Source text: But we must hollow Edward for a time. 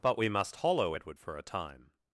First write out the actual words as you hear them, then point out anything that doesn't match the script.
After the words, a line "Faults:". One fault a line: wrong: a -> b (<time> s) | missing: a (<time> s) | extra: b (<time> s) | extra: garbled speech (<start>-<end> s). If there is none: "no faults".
But we must hollow Edward for a time.
Faults:
no faults